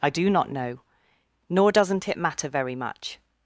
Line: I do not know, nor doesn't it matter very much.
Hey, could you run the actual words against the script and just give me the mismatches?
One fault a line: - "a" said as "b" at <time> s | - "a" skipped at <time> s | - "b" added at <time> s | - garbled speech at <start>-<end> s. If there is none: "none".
none